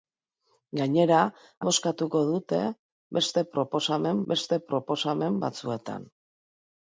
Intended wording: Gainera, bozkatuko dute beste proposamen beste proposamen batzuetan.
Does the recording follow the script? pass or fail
pass